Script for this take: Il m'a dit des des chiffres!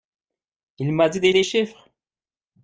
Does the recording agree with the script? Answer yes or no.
yes